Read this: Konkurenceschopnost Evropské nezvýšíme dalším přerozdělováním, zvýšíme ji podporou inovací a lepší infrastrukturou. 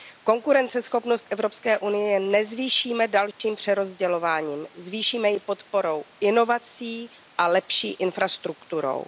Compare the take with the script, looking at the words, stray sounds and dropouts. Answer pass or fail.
fail